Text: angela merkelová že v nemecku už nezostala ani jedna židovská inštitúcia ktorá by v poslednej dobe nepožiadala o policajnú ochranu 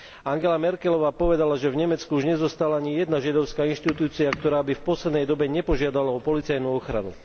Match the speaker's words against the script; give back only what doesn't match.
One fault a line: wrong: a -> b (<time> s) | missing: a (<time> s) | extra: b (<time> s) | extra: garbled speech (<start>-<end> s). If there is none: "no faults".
extra: povedala (1.1 s)